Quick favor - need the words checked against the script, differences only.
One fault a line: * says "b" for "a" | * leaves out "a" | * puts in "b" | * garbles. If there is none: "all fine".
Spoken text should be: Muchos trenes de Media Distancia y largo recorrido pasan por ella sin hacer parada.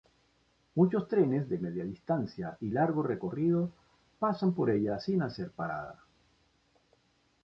all fine